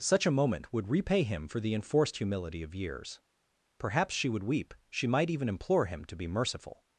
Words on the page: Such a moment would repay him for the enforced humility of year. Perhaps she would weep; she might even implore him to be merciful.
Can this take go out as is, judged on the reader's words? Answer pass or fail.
fail